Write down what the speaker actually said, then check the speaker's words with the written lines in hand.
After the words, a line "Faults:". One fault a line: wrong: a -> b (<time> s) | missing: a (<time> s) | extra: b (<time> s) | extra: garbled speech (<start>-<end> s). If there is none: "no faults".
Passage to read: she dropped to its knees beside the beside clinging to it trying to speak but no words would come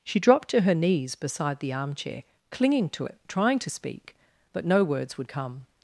she dropped to her knees beside the armchair clinging to it trying to speak but no words would come
Faults:
wrong: its -> her (0.6 s)
wrong: beside -> armchair (1.7 s)